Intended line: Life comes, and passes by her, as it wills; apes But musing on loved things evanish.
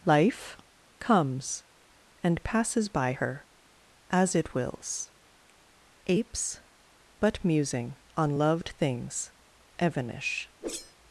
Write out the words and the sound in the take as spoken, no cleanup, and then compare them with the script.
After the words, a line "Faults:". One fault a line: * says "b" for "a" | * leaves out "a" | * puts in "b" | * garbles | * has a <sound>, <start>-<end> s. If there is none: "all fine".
Life comes, and passes by her, as it wills; apes But musing on loved things evanish.
Faults:
* has a whoosh, 10.6-11.0 s